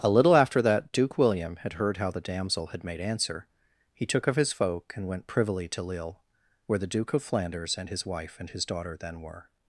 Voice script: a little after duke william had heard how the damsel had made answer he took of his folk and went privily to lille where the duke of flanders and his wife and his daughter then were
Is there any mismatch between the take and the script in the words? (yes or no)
yes